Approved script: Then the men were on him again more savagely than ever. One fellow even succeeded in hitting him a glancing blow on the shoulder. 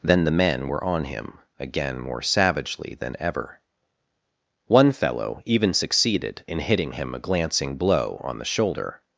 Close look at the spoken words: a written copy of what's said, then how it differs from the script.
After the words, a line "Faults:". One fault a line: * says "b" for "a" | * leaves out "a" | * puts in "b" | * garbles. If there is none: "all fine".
Then the men were on him again more savagely than ever. One fellow even succeeded in hitting him a glancing blow on the shoulder.
Faults:
all fine